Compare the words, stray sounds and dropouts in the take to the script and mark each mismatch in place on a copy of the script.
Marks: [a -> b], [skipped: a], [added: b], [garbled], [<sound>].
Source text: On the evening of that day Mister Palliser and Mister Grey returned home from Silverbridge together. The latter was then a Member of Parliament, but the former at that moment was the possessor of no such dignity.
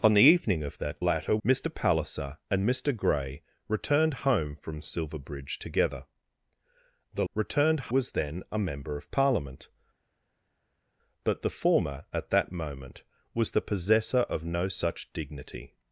On the evening of that [day -> latter] Mister Palliser and Mister Grey returned home from Silverbridge together. The [latter -> returned] was then a Member of Parliament, but the former at that moment was the possessor of no such dignity.